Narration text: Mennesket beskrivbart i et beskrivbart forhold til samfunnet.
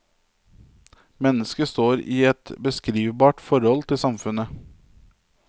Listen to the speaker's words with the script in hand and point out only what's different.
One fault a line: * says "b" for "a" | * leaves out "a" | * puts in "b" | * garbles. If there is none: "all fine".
* says "står" for "beskrivbart"